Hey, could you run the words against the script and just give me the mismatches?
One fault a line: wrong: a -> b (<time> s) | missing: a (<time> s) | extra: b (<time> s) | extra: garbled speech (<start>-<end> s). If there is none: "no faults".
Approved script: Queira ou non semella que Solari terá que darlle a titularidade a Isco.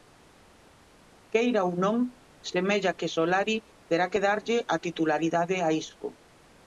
no faults